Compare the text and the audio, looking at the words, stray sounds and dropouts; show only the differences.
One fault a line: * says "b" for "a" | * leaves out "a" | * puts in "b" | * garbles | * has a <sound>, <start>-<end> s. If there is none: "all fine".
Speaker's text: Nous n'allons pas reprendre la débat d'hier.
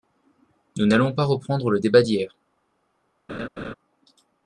* says "le" for "la"
* has a laugh, 3.3-3.7 s